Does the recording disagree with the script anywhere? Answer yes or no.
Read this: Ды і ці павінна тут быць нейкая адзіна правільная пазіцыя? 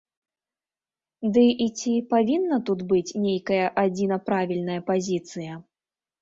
no